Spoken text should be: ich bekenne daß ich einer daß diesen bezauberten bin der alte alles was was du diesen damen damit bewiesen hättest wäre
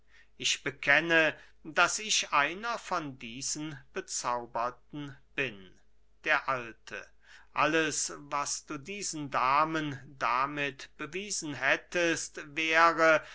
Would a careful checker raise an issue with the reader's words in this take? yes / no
yes